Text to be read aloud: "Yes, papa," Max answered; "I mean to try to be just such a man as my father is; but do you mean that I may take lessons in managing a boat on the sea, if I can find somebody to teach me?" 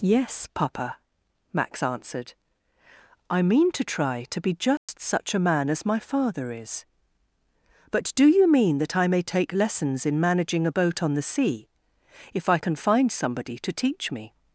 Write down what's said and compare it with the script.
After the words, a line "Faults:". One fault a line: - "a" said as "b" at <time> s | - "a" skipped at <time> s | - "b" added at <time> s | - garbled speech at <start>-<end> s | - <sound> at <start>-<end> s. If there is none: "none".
"Yes, papa," Max answered; "I mean to try to be just such a man as my father is; but do you mean that I may take lessons in managing a boat on the sea, if I can find somebody to teach me?"
Faults:
- dropout at 4.8-4.9 s